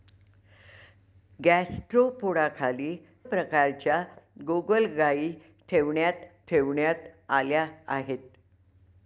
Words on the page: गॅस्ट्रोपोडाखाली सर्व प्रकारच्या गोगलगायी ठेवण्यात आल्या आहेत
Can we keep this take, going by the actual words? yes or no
no